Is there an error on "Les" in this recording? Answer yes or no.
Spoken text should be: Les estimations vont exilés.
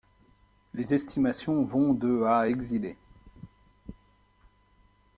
no